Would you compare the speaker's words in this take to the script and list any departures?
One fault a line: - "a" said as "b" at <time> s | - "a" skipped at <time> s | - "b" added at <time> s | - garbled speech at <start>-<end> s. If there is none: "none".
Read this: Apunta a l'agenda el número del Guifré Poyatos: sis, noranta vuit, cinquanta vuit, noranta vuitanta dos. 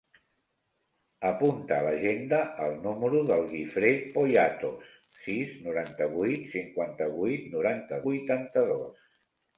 none